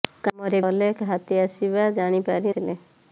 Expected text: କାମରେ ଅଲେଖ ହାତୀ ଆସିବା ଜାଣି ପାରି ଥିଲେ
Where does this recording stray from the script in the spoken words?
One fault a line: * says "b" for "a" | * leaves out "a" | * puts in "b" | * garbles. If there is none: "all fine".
all fine